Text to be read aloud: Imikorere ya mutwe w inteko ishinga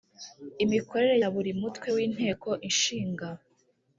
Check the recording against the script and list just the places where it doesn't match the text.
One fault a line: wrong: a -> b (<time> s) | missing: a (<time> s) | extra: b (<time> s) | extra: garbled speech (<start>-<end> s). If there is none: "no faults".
extra: buri (1.3 s)